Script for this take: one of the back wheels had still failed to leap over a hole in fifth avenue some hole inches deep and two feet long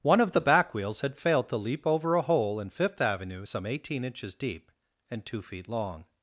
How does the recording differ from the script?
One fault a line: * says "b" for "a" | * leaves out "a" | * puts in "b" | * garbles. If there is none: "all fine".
* leaves out "still"
* says "eighteen" for "hole"